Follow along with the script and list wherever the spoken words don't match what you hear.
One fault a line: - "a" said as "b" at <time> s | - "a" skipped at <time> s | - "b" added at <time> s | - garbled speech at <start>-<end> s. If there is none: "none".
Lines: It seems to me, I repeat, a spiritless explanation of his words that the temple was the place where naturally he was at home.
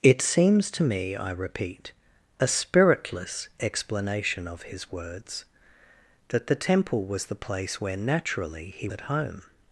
- "was" skipped at 8.9 s